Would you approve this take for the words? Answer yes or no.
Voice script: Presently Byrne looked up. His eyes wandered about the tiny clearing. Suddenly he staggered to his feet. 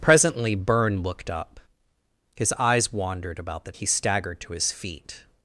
no